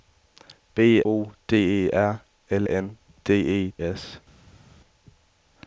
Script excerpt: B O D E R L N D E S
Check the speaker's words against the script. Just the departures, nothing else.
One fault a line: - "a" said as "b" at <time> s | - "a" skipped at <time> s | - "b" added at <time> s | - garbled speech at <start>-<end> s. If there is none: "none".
none